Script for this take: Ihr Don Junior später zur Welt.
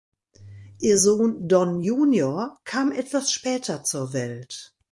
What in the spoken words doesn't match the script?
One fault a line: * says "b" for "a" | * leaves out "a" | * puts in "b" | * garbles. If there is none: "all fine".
* puts in "Sohn"
* puts in "kam etwas"